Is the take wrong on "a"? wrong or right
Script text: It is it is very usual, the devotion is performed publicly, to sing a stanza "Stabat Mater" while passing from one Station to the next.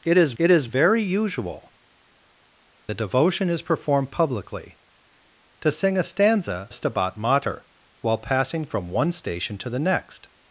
right